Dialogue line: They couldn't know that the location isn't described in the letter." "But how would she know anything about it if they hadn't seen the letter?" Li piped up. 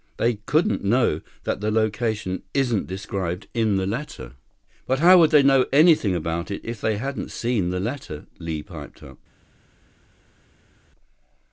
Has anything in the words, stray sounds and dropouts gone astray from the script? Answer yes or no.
yes